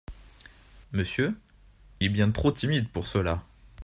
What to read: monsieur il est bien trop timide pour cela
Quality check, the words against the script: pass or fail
fail